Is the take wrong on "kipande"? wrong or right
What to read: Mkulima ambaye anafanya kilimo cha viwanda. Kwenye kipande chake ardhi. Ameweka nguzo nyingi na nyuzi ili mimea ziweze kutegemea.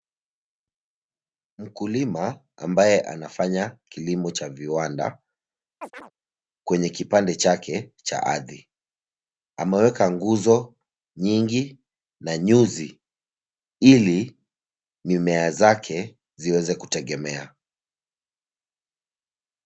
right